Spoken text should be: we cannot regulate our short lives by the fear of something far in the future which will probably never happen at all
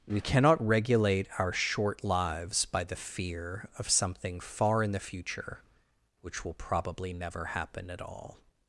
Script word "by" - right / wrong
right